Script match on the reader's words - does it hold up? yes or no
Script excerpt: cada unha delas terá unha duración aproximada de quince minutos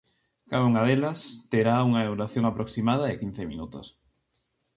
yes